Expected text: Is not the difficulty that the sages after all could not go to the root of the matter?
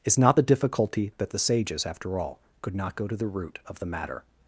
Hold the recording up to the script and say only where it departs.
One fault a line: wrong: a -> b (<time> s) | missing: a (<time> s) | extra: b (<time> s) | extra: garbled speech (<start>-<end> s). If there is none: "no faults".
no faults